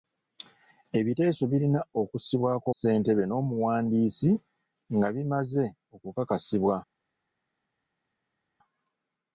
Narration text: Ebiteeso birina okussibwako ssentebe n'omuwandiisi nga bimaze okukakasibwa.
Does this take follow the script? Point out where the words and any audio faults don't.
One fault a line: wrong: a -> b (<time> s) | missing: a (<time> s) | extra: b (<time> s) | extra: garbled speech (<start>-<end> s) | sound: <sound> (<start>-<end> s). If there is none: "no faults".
no faults